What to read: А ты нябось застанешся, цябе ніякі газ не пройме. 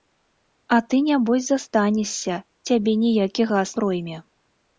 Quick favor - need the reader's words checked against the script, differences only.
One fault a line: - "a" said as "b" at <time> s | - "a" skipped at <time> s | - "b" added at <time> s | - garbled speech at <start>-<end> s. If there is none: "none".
- "не" skipped at 3.7 s